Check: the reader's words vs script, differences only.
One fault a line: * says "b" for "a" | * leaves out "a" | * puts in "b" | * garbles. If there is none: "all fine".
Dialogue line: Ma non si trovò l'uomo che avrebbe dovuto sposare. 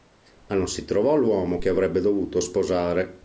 all fine